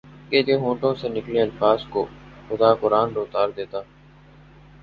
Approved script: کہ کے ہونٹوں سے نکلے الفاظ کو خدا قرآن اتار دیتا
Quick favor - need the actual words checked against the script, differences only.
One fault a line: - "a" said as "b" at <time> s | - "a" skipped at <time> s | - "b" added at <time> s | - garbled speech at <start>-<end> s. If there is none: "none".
none